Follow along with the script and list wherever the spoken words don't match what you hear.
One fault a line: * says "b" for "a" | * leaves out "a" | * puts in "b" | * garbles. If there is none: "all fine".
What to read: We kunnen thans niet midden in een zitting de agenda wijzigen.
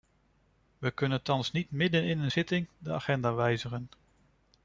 all fine